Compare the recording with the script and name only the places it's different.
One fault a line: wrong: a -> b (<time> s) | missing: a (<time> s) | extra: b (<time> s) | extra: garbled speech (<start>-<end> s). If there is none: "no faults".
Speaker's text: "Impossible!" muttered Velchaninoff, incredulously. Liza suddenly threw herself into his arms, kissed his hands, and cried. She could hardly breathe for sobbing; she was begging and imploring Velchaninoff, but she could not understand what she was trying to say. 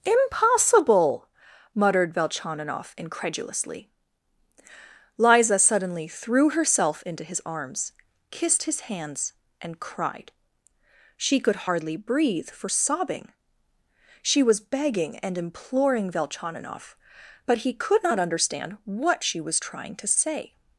wrong: she -> he (17.6 s)